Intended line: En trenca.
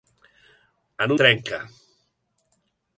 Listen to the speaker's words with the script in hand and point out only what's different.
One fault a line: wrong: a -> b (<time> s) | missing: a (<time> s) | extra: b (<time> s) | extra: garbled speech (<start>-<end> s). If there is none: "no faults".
no faults